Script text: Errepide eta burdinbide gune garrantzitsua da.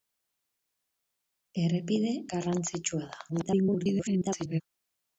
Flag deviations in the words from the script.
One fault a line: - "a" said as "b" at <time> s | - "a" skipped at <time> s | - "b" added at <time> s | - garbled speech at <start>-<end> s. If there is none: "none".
- "eta burdinbide gune" skipped at 2.1 s
- garbled speech at 3.3-4.6 s